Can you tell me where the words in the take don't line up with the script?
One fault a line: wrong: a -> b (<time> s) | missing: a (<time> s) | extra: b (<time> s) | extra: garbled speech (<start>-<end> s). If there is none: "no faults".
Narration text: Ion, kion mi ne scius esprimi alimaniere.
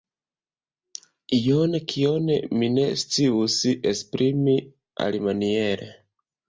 no faults